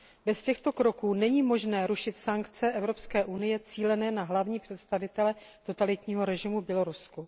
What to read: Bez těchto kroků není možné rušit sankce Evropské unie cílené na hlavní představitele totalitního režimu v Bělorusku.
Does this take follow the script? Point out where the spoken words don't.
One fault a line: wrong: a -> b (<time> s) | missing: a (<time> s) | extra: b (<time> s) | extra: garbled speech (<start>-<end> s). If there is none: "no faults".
no faults